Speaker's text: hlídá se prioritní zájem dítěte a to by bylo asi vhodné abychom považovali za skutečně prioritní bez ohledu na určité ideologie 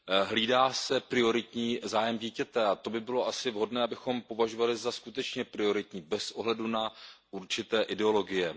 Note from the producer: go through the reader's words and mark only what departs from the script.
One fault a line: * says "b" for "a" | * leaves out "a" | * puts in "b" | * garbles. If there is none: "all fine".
all fine